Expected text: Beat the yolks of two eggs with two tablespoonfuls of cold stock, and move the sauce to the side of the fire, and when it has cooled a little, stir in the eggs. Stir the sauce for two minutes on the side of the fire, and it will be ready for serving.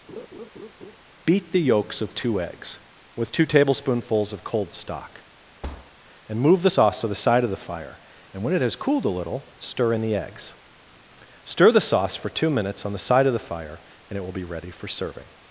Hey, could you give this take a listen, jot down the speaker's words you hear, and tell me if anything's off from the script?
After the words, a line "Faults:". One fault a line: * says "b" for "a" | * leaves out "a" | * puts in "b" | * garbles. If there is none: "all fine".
Beat the yolks of two eggs with two tablespoonfuls of cold stock, and move the sauce to the side of the fire, and when it has cooled a little, stir in the eggs. Stir the sauce for two minutes on the side of the fire, and it will be ready for serving.
Faults:
all fine